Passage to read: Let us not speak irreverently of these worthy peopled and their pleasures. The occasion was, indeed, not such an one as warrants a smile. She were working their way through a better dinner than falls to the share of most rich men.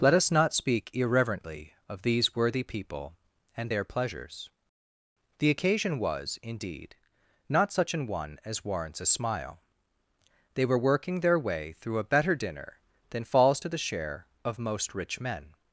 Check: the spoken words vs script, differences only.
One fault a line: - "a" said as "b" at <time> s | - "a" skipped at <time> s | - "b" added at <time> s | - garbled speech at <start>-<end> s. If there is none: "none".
- "peopled" said as "people" at 2.6 s
- "She" said as "They" at 10.5 s